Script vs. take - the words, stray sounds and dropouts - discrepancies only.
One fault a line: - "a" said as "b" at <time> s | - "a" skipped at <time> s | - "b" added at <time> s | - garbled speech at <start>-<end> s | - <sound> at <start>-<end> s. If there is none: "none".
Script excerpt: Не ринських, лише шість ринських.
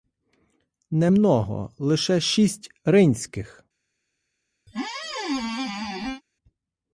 - "ринських" said as "много" at 1.1 s
- squeak at 4.7-6.2 s